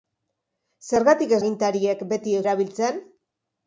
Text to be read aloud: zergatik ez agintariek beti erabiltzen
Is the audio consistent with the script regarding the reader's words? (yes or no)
yes